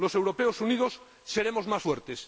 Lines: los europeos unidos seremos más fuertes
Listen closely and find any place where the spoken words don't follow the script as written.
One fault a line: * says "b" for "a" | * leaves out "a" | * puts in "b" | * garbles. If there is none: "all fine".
all fine